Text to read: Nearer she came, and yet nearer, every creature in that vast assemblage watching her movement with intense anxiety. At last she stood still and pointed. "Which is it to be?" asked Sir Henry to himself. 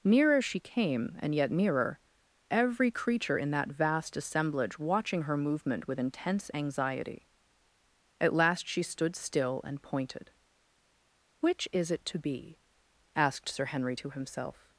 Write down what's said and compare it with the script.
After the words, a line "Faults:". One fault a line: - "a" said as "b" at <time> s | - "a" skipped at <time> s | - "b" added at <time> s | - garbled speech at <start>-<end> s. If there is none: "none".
Nearer she came, and yet nearer, every creature in that vast assemblage watching her movement with intense anxiety. At last she stood still and pointed. "Which is it to be?" asked Sir Henry to himself.
Faults:
none